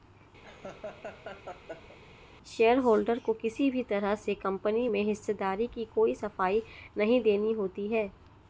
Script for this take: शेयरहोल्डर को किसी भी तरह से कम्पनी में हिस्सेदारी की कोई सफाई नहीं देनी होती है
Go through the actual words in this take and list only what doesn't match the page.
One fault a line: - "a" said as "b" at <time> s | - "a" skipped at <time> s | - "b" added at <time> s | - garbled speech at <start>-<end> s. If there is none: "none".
none